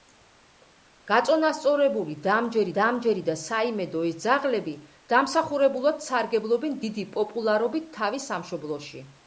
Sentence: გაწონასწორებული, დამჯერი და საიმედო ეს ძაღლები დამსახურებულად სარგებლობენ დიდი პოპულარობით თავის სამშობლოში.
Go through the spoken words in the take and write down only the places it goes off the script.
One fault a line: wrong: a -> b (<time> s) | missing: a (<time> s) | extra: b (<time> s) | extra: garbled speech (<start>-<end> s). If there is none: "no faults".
extra: დამჯერი (2.8 s)